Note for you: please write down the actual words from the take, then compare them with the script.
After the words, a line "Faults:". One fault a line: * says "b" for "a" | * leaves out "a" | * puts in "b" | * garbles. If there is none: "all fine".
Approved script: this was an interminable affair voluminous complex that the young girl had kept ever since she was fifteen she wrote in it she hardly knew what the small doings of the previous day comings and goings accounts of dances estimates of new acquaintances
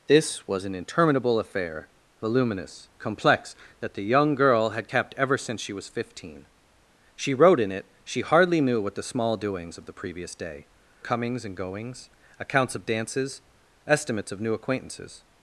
this was an interminable affair voluminous complex that the young girl had kept ever since she was fifteen she wrote in it she hardly knew what the small doings of the previous day comings and goings accounts of dances estimates of new acquaintances
Faults:
all fine